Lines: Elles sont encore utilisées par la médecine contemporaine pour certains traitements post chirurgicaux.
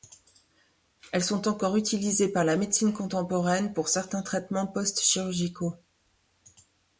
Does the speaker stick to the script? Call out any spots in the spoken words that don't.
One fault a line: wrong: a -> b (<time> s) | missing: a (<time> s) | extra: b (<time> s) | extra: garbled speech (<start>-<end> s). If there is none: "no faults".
no faults